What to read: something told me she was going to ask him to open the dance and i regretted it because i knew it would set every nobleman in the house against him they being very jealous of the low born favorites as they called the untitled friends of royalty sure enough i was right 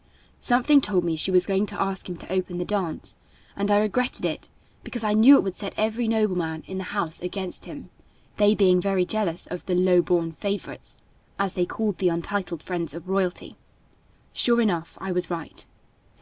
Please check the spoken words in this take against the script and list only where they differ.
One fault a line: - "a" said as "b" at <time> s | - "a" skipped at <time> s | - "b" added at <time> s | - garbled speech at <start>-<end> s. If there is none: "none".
none